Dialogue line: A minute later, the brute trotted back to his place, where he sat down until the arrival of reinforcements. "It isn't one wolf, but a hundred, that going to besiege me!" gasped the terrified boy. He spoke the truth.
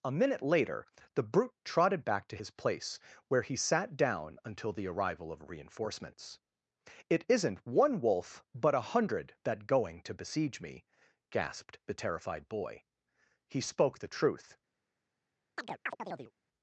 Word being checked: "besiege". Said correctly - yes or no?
yes